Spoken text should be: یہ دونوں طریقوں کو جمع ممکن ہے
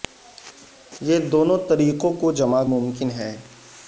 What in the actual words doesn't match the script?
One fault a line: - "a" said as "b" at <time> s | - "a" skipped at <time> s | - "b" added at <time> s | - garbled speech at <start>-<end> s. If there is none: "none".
none